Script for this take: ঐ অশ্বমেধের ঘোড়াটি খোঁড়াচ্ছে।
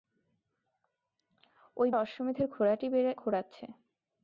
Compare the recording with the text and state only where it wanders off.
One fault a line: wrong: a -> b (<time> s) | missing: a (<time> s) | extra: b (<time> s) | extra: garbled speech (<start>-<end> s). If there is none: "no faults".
no faults